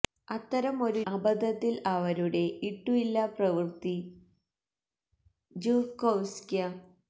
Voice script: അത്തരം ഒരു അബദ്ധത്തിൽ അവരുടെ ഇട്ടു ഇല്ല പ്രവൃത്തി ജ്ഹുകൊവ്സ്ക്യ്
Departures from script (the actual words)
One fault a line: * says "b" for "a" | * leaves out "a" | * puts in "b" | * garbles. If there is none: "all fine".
all fine